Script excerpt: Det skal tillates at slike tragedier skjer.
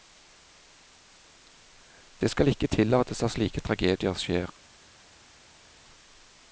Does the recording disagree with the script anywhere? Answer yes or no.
yes